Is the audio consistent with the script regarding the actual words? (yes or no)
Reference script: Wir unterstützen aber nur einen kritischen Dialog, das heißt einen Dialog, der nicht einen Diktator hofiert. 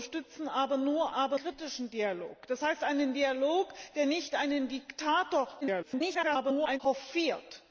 no